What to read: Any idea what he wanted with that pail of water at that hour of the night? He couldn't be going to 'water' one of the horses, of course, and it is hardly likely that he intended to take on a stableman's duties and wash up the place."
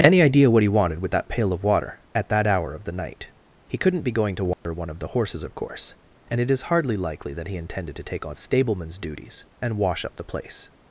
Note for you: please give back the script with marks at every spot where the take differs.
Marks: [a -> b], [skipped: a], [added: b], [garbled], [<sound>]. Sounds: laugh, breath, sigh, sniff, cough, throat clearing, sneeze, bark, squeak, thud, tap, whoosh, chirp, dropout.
Any idea what he wanted with that pail of water at that hour of the night? He couldn't be going to 'water' [dropout] one of the horses, of course, and it is hardly likely that he intended to take on [skipped: a] stableman's duties and wash up the place."